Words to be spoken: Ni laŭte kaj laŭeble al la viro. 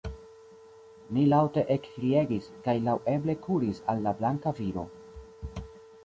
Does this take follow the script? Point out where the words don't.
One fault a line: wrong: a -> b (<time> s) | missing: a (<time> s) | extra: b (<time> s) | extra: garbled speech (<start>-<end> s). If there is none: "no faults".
extra: ekkriegis (1.7 s)
extra: kuris (3.5 s)
extra: blanka (4.2 s)